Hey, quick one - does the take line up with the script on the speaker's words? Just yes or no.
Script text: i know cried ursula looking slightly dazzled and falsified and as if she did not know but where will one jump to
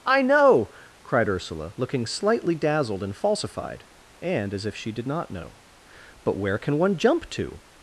no